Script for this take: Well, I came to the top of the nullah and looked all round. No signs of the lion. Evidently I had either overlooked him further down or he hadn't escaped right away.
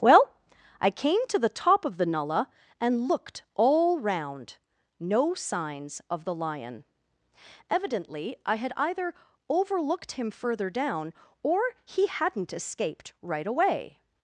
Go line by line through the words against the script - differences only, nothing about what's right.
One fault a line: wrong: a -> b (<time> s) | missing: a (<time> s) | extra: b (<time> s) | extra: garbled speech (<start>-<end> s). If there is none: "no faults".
no faults